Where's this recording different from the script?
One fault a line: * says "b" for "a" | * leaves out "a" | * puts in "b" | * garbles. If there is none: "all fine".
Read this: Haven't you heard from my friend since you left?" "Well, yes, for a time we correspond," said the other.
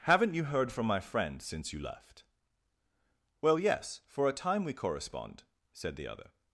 all fine